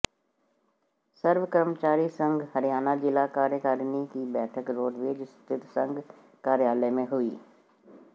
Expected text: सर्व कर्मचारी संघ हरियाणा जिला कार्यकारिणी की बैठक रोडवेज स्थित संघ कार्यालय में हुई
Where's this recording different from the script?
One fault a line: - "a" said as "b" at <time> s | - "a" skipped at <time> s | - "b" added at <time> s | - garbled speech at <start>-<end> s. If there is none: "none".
none